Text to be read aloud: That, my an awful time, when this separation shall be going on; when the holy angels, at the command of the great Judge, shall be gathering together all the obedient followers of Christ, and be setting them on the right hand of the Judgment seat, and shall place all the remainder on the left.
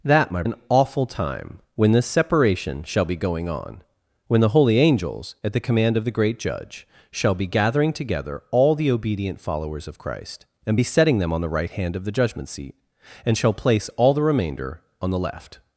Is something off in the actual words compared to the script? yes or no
no